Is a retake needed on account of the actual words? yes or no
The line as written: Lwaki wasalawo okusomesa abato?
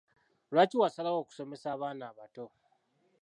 yes